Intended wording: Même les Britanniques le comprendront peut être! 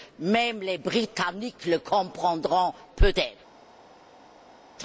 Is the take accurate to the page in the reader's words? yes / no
yes